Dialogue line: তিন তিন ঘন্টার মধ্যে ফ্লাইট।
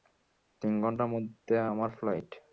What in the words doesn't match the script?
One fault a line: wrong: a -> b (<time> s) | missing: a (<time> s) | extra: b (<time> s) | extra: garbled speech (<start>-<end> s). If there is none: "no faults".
missing: তিন (0.7 s)
extra: আমার (1.7 s)